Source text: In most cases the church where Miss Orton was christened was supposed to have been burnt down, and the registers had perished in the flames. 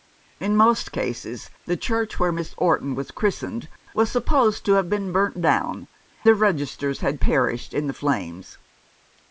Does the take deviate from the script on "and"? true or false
true